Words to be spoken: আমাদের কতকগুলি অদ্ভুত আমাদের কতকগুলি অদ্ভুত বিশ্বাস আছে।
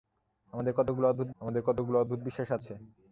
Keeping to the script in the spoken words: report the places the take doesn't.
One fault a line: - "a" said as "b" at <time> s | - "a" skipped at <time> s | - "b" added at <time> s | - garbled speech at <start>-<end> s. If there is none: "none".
none